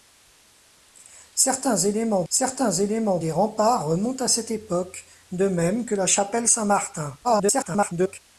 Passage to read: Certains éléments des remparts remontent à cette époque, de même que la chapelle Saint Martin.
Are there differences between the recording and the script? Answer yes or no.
yes